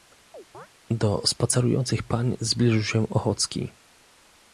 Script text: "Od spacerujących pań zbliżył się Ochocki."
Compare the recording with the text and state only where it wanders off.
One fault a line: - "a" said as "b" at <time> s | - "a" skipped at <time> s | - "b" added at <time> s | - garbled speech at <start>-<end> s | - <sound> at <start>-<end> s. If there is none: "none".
- chirp at 0.3-0.7 s
- "Od" said as "Do" at 0.9 s